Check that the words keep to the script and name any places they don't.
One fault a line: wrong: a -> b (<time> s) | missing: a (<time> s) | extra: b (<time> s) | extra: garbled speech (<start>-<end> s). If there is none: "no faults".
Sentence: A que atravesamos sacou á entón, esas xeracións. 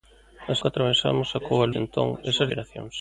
no faults